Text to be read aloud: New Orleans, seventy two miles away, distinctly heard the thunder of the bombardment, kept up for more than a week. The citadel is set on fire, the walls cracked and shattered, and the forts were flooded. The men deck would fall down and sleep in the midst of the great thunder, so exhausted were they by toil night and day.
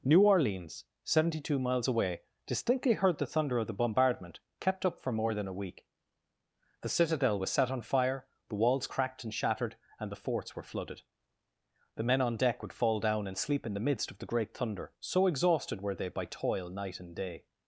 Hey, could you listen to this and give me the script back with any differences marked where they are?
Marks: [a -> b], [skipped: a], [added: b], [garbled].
New Orleans, seventy two miles away, distinctly heard the thunder of the bombardment, kept up for more than a week. The citadel [is -> was] set on fire, the walls cracked and shattered, and the forts were flooded. The men [added: on] deck would fall down and sleep in the midst of the great thunder, so exhausted were they by toil night and day.